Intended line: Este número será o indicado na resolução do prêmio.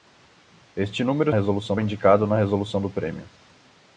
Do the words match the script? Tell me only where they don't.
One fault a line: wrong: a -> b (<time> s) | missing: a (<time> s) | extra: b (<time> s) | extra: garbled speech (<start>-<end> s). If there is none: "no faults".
wrong: será -> resolução (1.3 s)